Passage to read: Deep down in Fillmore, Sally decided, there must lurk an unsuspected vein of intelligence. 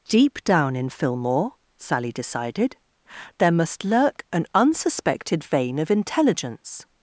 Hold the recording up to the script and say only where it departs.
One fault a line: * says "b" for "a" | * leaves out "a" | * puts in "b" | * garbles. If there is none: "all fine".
all fine